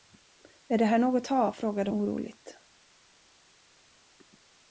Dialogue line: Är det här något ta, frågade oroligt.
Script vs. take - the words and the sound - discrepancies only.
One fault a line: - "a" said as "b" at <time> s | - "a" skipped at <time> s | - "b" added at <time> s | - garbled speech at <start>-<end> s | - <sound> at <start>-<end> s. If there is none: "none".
none